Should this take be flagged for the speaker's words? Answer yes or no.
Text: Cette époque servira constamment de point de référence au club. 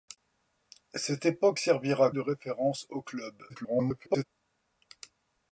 yes